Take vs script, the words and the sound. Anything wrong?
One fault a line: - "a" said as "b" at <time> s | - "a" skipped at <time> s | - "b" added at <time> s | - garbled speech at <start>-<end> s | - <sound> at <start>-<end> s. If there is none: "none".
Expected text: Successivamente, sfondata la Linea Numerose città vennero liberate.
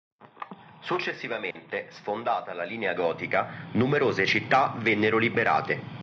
- dropout at 1.5-1.6 s
- "Gotica" added at 3.0 s